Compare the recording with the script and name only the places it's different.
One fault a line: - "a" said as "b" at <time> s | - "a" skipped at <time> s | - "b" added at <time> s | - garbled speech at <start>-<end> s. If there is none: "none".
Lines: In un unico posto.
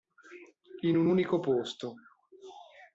none